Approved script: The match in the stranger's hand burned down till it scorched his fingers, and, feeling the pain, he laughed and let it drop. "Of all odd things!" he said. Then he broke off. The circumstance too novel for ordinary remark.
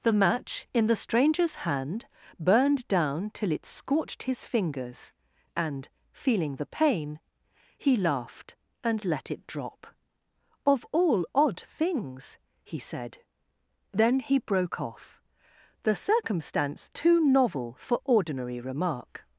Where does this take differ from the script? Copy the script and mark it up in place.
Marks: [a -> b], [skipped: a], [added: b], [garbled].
The match in the stranger's hand burned down till it scorched his fingers, and, feeling the pain, he laughed and let it drop. "Of all odd things!" he said. Then he broke off. The circumstance too novel for ordinary remark.